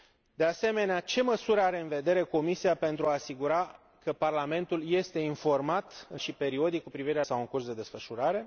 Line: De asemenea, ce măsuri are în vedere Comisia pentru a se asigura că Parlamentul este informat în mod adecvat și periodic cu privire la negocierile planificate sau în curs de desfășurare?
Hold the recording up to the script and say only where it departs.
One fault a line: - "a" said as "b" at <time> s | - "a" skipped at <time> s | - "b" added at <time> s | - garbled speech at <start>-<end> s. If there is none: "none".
- "mod adecvat" skipped at 6.2 s
- "la negocierile planificate" skipped at 7.2 s